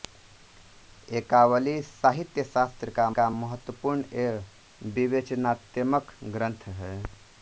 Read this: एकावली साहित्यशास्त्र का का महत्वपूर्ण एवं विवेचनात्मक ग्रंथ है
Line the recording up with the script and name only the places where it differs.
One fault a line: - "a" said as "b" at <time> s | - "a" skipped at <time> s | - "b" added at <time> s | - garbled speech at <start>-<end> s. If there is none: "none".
none